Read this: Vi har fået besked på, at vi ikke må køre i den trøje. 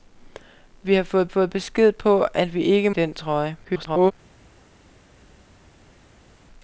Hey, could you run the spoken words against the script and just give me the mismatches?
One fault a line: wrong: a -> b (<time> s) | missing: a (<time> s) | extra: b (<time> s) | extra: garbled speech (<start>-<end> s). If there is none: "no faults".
extra: fået (1.3 s)
missing: må køre (2.9 s)
extra: garbled speech (3.6-4.1 s)